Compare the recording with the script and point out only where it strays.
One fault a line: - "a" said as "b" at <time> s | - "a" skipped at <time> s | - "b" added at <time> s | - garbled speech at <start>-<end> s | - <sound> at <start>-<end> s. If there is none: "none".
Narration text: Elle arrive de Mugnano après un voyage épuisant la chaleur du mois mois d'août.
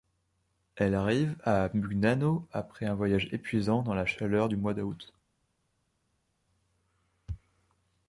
- "de" said as "à" at 1.4 s
- "dans" added at 3.8 s
- "mois" skipped at 4.7 s